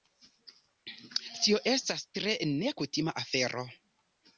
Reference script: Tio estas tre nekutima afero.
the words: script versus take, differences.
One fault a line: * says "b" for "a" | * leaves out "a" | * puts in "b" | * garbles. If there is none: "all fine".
all fine